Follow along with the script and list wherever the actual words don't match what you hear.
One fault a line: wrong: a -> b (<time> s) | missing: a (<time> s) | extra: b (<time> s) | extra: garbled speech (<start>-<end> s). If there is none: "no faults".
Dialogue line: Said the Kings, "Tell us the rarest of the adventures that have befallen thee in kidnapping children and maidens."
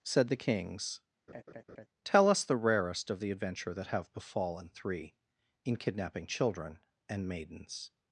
wrong: adventures -> adventure (3.3 s)
wrong: thee -> three (4.7 s)